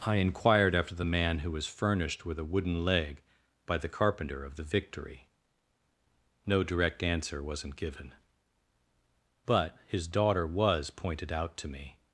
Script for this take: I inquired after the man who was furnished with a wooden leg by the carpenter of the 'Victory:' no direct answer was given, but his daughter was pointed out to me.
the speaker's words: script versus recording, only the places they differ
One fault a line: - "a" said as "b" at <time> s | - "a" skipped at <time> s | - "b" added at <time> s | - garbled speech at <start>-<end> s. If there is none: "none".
- "was" said as "wasn't" at 7.4 s